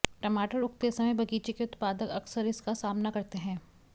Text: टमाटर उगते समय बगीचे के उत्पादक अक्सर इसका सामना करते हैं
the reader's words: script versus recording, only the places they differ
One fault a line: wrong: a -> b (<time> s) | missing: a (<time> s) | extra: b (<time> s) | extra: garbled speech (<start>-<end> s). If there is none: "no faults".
no faults